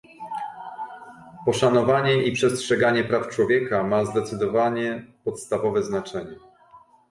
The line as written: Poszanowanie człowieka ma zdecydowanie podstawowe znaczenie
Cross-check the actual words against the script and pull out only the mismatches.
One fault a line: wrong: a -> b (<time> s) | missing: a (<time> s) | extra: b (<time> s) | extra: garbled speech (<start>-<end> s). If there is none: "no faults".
extra: i przestrzeganie praw (2.2 s)